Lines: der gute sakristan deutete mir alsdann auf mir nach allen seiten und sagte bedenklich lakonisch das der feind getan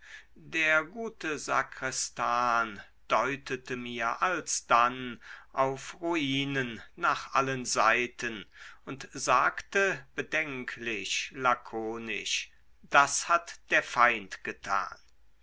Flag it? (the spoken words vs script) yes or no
yes